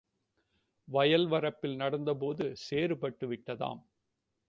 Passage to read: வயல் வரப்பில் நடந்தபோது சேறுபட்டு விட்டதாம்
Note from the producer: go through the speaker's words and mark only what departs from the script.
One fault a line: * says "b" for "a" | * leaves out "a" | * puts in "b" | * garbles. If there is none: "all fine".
all fine